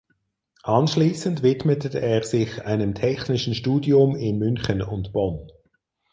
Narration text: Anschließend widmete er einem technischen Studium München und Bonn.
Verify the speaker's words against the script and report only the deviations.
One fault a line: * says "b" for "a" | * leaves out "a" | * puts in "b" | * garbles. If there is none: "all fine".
* puts in "sich"
* puts in "in"